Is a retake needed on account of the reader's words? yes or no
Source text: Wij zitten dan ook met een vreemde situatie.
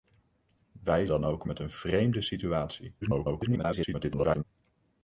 yes